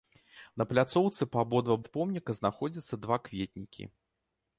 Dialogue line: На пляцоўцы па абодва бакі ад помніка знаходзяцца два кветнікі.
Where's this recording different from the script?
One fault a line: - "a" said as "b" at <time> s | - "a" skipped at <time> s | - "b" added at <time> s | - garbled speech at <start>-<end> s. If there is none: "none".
- "бакі" skipped at 1.8 s